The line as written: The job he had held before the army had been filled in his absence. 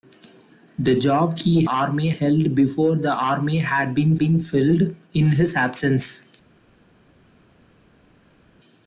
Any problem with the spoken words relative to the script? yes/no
yes